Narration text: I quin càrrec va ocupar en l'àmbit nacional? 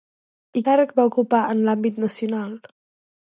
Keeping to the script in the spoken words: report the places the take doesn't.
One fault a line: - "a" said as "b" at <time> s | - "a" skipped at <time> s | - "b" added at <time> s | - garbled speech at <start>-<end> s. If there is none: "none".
- "quin" skipped at 0.6 s